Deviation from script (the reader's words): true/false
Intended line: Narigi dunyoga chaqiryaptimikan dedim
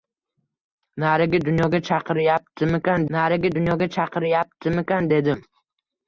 true